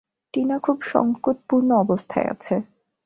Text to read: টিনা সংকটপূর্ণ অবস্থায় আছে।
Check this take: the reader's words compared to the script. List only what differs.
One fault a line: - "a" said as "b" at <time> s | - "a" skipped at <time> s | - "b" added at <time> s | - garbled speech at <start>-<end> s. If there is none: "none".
- "খুব" added at 0.6 s